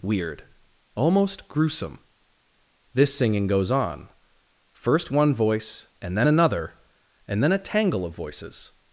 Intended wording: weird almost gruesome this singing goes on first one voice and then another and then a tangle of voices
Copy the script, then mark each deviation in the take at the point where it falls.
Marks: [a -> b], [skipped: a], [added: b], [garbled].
weird almost gruesome this singing goes on first one voice and then another and then a tangle of voices